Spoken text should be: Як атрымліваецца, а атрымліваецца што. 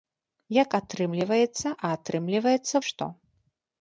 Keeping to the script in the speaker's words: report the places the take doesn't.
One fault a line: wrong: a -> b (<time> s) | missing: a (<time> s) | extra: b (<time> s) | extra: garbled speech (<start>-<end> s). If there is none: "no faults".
no faults